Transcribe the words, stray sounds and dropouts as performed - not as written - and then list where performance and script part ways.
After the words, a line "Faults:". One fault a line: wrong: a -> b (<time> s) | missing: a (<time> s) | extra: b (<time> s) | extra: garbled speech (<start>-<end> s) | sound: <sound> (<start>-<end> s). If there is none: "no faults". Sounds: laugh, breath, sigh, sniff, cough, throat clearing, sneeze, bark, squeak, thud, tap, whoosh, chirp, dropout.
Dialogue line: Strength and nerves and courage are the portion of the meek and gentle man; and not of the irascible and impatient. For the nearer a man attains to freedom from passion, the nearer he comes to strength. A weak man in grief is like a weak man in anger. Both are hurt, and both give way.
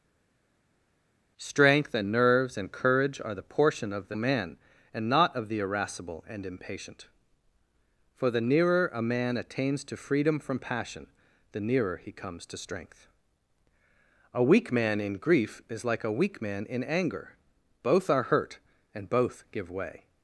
Strength and nerves and courage are the portion of the man; and not of the irascible and impatient. For the nearer a man attains to freedom from passion, the nearer he comes to strength. A weak man in grief is like a weak man in anger. Both are hurt, and both give way.
Faults:
missing: meek and gentle (4.2 s)